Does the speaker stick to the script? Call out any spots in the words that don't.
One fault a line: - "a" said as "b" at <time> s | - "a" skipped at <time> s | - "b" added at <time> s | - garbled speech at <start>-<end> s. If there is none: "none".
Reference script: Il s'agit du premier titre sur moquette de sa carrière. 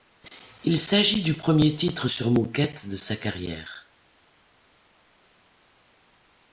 none